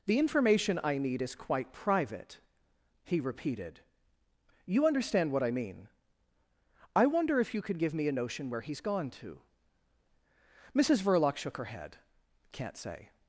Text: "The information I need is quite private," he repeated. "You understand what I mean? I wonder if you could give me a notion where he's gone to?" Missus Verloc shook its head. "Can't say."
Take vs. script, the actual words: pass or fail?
fail